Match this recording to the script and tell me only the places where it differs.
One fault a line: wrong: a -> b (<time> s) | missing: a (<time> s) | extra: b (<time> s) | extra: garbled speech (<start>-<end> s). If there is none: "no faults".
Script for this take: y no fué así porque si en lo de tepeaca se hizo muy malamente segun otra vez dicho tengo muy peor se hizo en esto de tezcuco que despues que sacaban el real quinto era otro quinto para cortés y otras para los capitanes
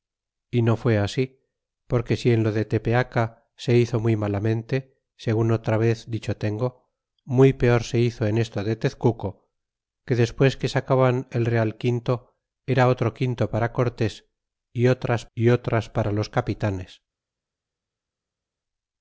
extra: y otras (15.3 s)